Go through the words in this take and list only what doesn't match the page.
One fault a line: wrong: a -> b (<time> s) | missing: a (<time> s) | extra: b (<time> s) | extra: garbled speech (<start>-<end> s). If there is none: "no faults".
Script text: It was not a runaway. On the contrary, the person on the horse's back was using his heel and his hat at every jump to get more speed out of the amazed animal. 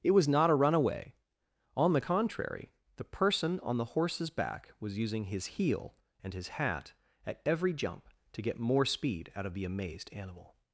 no faults